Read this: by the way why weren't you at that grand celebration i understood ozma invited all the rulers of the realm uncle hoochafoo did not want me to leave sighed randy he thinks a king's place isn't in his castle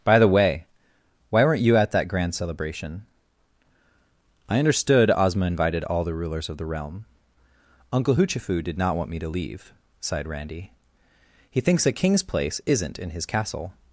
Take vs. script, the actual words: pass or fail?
pass